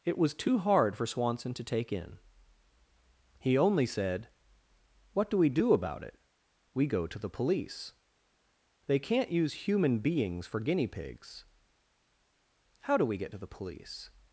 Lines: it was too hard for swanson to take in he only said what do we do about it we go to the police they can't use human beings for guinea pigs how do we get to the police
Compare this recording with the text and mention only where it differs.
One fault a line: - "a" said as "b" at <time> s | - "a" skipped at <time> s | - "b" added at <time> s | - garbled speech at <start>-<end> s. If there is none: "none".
none